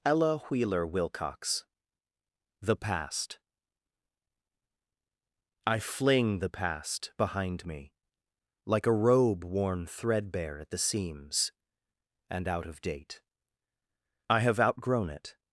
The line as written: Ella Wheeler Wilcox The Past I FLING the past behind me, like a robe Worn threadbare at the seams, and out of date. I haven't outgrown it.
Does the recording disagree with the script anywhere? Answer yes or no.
yes